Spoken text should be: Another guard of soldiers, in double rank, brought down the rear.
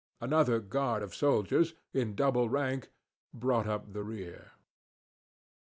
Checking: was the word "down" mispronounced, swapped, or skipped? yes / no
yes